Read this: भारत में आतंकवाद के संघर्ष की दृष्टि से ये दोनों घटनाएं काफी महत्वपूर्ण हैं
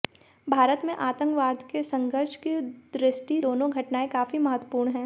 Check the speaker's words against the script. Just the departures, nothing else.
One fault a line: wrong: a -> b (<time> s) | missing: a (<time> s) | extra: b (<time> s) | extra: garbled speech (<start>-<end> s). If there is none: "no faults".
missing: से ये (3.4 s)